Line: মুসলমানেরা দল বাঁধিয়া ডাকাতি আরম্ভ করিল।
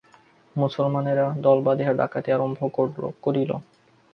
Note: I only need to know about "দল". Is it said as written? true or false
true